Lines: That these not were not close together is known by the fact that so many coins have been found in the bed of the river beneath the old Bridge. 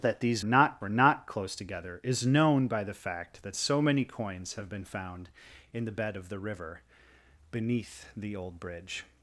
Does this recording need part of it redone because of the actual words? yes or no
no